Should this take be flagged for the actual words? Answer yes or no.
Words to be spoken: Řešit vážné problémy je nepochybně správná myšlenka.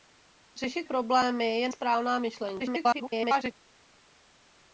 yes